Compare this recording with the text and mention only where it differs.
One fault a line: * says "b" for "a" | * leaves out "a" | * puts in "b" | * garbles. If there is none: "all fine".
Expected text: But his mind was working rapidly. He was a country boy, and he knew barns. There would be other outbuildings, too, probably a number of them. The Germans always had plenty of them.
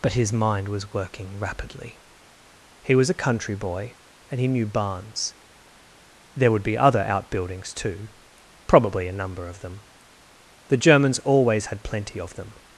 all fine